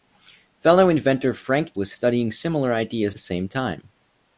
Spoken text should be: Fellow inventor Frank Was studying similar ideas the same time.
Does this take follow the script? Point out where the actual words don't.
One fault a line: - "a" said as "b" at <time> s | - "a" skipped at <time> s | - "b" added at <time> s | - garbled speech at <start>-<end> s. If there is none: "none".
none